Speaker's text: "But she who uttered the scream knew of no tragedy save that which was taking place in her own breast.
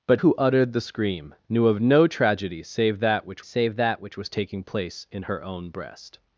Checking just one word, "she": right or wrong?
wrong